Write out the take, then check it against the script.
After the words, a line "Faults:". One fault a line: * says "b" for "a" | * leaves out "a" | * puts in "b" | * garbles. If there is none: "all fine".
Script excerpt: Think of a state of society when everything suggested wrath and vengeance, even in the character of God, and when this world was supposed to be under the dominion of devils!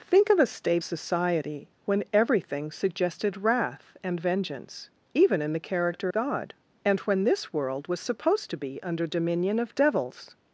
Think of a state society when everything suggested wrath and vengeance, even in the character God, and when this world was supposed to be under dominion of devils!
Faults:
* leaves out "of"
* leaves out "of"
* leaves out "the"